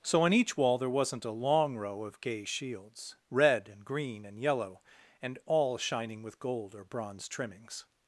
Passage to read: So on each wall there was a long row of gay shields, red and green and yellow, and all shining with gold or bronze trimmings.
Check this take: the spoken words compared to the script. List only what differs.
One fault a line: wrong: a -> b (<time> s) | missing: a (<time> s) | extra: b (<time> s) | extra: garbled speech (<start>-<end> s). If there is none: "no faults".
wrong: was -> wasn't (0.9 s)